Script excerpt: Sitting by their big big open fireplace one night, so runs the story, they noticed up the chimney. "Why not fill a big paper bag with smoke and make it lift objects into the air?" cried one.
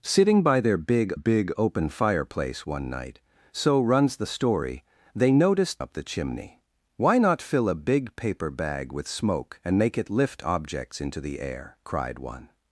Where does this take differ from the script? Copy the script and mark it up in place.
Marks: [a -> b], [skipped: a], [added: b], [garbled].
Sitting by their big big open fireplace one night, so runs the story, they noticed up the chimney. "Why not fill a big paper bag with smoke and make it lift objects into the air?" cried one.